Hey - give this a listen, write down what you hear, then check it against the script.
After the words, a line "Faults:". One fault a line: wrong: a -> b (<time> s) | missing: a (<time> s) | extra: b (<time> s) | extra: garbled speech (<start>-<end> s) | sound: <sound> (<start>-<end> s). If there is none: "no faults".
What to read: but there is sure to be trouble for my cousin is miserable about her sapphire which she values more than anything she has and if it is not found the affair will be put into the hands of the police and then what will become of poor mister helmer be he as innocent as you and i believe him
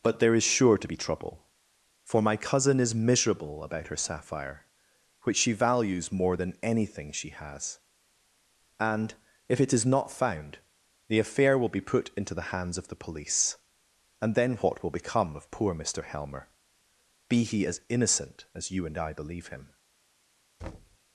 but there is sure to be trouble for my cousin is miserable about her sapphire which she values more than anything she has and if it is not found the affair will be put into the hands of the police and then what will become of poor mister helmer be he as innocent as you and i believe him
Faults:
sound: thud (20.6-21.0 s)